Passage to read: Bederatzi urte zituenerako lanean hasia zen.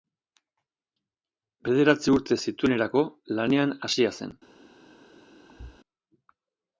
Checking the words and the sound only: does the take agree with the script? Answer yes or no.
no